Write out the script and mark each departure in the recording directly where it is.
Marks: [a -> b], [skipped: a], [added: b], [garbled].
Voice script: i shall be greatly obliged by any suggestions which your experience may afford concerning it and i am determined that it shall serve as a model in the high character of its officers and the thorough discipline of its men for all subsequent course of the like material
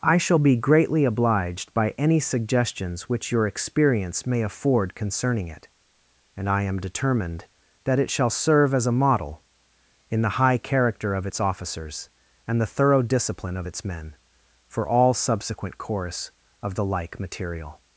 i shall be greatly obliged by any suggestions which your experience may afford concerning it and i am determined that it shall serve as a model in the high character of its officers and the thorough discipline of its men for all subsequent course of the like material